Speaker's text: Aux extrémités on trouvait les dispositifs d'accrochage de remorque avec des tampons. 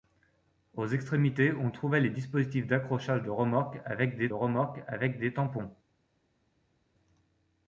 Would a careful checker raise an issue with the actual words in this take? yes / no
yes